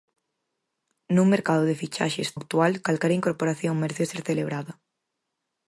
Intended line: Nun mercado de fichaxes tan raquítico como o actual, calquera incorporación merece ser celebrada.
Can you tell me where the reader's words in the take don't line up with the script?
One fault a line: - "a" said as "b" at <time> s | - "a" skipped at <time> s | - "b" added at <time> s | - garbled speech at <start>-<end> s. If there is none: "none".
- "tan raquítico como" skipped at 2.3 s